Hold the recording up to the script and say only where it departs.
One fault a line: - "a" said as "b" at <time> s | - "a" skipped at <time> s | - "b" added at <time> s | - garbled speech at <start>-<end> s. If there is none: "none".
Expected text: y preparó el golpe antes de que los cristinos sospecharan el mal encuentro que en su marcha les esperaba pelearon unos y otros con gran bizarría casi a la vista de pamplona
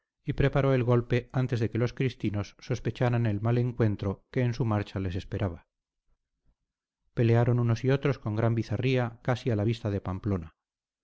none